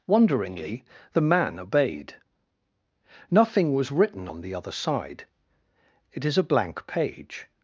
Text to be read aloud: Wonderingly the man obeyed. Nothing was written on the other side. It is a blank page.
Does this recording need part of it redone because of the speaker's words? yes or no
no